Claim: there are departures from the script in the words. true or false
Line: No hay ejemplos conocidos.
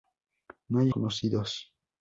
true